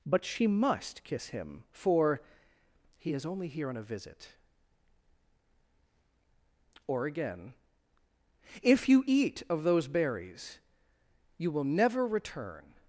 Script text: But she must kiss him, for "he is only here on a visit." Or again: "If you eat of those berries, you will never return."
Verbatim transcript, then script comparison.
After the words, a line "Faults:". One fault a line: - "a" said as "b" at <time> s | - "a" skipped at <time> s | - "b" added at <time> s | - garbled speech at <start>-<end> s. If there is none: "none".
But she must kiss him, for "he is only here on a visit." Or again: "If you eat of those berries, you will never return."
Faults:
none